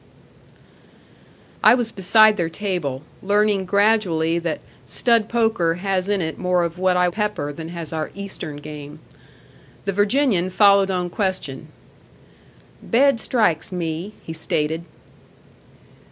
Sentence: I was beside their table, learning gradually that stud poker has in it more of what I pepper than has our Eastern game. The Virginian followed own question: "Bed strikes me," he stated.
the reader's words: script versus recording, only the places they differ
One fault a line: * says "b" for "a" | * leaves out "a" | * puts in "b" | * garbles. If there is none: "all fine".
all fine